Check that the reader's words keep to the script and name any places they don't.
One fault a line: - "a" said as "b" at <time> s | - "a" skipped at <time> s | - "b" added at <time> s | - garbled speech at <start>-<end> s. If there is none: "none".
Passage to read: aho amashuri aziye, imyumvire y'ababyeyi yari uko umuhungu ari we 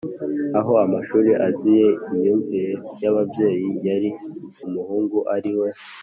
- "uko" skipped at 4.1 s